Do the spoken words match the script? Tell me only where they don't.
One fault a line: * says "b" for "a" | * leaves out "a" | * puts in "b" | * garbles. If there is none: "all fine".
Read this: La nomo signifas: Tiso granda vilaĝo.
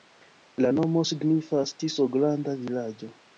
all fine